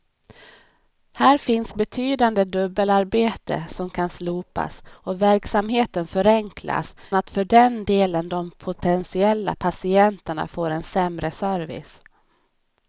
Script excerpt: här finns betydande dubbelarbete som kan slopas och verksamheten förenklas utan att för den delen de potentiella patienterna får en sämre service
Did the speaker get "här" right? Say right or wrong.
right